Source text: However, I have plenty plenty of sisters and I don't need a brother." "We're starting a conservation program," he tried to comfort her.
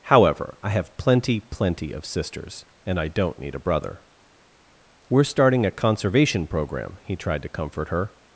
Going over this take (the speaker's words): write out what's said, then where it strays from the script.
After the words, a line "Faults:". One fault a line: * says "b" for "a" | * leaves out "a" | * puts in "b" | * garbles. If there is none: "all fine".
However, I have plenty plenty of sisters and I don't need a brother." "We're starting a conservation program," he tried to comfort her.
Faults:
all fine